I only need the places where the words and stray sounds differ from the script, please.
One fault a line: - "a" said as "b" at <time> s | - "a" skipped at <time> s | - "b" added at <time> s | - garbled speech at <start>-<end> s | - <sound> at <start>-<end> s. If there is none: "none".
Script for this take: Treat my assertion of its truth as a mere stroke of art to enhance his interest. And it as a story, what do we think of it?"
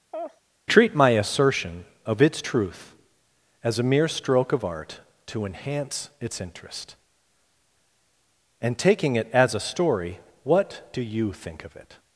- laugh at 0.1-0.4 s
- "his" said as "its" at 6.2 s
- "taking" added at 8.8 s
- "we" said as "you" at 11.0 s